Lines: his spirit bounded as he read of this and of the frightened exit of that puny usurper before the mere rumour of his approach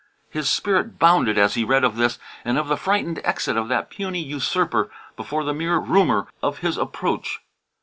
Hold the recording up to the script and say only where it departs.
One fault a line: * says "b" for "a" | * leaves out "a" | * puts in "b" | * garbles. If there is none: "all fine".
all fine